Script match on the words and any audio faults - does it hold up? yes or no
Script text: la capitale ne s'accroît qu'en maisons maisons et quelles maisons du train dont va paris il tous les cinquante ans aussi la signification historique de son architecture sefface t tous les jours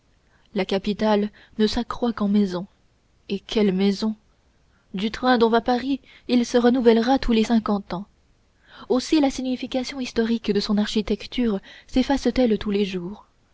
no